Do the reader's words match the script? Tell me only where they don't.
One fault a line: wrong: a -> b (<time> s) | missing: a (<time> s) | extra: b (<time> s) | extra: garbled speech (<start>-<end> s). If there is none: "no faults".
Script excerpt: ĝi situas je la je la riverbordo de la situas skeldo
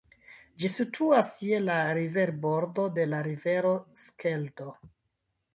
missing: je la (1.8 s)
wrong: situas -> rivero (3.3 s)